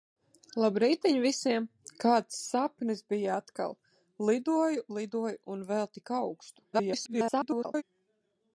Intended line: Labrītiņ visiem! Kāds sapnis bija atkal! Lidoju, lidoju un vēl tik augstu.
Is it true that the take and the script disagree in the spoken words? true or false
true